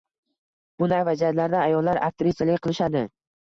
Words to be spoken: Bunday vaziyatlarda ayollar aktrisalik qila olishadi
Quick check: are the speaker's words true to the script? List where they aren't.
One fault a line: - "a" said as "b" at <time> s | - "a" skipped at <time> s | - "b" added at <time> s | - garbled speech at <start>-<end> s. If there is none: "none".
- "qila" skipped at 2.7 s